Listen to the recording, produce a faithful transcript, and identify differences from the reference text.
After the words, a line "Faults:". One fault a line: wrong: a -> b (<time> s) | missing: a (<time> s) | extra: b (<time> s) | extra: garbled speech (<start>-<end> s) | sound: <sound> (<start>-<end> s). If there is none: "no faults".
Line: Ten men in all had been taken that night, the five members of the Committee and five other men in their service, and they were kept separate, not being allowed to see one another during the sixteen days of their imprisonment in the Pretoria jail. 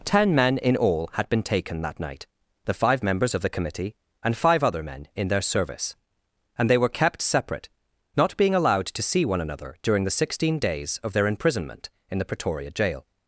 Ten men in all had been taken that night, the five members of the Committee and five other men in their service, and they were kept separate, not being allowed to see one another during the sixteen days of their imprisonment in the Pretoria jail.
Faults:
no faults